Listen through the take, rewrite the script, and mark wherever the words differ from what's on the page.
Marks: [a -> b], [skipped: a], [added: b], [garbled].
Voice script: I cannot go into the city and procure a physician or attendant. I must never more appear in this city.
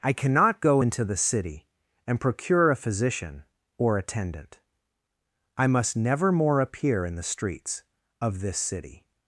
I cannot go into the city and procure a physician or attendant. I must never more appear in [added: the streets of] this city.